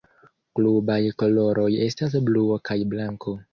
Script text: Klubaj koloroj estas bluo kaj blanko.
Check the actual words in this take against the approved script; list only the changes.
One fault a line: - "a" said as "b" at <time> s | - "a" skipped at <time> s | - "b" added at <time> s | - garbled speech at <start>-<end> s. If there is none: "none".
none